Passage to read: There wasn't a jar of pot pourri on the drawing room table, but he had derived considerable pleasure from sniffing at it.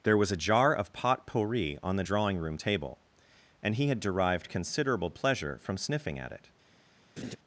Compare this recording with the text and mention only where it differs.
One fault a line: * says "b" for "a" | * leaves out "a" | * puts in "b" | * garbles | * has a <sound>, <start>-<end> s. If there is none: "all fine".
* says "was" for "wasn't"
* says "and" for "but"
* has a laugh, 7.2-7.4 s